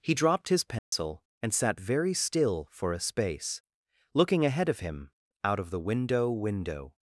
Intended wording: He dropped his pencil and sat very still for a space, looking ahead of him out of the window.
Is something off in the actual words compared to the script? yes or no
yes